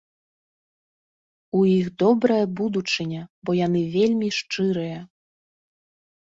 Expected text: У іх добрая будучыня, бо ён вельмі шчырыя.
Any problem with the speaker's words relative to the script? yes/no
yes